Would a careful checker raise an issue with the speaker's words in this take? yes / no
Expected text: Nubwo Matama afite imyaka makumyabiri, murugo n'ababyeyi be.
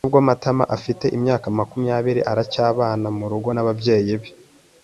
yes